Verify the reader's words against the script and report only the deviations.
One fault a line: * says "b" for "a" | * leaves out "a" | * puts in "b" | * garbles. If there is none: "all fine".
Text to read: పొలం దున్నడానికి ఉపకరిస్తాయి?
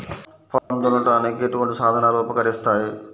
* puts in "ఎటువంటి సాధనలు"